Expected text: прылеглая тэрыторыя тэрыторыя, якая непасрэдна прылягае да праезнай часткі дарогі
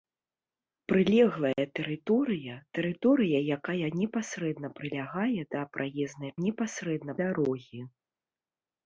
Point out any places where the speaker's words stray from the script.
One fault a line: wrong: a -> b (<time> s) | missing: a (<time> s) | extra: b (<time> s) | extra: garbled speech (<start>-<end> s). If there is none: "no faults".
wrong: часткі -> непасрэдна (6.5 s)